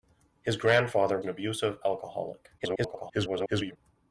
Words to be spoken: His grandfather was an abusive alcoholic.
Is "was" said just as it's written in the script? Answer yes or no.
no